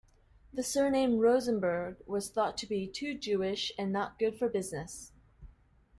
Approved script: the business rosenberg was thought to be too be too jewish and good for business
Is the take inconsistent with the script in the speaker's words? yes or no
yes